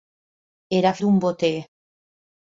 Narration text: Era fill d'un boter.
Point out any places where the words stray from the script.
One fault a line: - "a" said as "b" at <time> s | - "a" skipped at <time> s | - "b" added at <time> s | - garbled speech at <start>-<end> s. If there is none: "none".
- "fill" skipped at 0.9 s